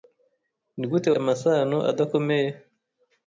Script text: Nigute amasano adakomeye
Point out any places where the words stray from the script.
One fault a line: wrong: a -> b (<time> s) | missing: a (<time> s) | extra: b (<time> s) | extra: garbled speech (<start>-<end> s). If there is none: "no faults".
no faults